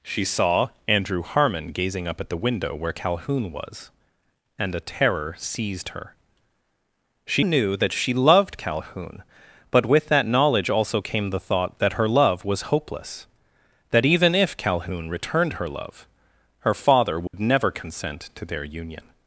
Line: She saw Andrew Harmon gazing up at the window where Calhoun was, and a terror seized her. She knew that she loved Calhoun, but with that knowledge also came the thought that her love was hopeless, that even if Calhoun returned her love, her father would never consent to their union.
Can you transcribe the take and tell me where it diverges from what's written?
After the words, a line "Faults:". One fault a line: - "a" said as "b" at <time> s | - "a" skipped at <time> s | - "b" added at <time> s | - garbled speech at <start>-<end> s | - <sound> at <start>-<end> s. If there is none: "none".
She saw Andrew Harmon gazing up at the window where Calhoun was, and a terror seized her. She knew that she loved Calhoun, but with that knowledge also came the thought that her love was hopeless, that even if Calhoun returned her love, her father would never consent to their union.
Faults:
- dropout at 17.3-17.3 s